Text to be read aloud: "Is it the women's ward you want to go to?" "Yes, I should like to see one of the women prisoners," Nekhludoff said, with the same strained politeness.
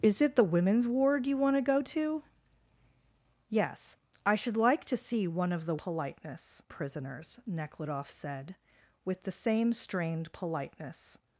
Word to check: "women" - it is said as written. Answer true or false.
false